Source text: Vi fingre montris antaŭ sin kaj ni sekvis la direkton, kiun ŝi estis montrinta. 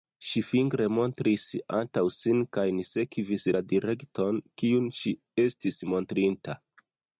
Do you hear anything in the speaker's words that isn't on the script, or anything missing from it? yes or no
yes